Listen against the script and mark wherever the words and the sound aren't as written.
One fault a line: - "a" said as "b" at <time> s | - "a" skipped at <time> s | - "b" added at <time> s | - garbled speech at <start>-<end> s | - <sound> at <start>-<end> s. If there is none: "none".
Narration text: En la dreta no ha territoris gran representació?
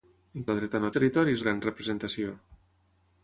none